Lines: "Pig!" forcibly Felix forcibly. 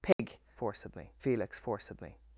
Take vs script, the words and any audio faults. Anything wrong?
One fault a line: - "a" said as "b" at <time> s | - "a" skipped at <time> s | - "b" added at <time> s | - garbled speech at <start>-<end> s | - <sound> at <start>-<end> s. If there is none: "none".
- dropout at 0.1-0.2 s